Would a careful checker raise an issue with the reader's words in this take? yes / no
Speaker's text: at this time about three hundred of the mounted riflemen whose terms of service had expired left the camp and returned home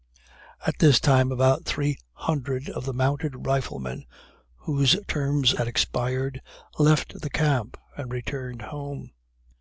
yes